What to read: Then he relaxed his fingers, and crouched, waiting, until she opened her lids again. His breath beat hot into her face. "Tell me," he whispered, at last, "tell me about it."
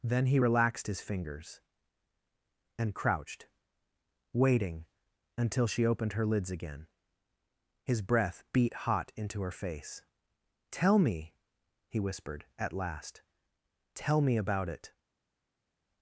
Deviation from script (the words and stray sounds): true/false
false